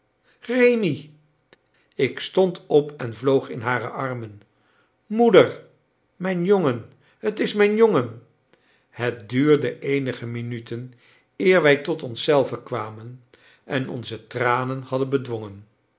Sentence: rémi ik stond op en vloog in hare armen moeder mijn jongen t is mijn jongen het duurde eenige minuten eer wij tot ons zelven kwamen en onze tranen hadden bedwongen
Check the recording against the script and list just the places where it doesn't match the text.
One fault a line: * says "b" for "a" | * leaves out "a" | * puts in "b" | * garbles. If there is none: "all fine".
all fine